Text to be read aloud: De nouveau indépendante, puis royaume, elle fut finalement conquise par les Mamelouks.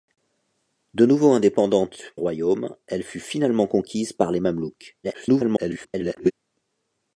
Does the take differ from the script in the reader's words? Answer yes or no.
yes